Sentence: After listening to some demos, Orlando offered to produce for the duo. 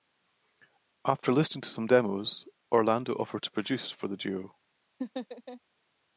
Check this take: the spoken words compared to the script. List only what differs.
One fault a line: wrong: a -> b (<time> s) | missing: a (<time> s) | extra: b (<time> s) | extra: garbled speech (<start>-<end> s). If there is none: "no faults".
no faults